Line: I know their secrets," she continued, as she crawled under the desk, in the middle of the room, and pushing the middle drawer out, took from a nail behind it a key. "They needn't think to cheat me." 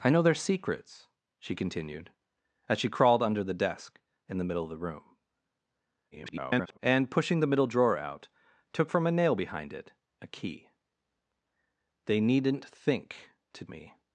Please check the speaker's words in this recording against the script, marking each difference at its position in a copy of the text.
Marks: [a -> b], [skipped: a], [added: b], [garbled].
I know their secrets," she continued, as she crawled under the desk, in the middle of the room, [garbled] and pushing the middle drawer out, took from a nail behind it a key. "They needn't think to [skipped: cheat] me."